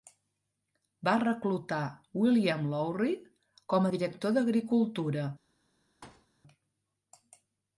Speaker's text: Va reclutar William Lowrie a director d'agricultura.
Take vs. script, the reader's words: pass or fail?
fail